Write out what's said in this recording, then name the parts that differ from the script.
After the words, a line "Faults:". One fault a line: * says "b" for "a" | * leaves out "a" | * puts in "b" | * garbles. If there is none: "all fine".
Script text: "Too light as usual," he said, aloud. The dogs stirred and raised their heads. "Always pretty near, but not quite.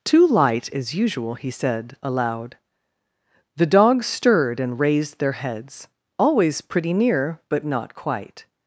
"Too light as usual," he said, aloud. The dogs stirred and raised their heads. "Always pretty near, but not quite.
Faults:
all fine